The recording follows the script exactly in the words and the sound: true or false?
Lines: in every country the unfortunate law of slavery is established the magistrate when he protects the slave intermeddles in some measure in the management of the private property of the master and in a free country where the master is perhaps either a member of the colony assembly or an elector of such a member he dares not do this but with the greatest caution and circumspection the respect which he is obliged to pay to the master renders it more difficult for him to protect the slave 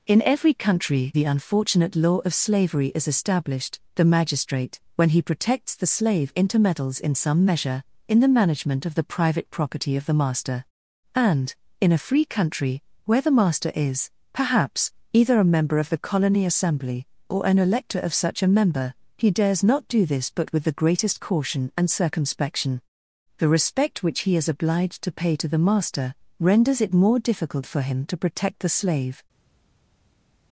true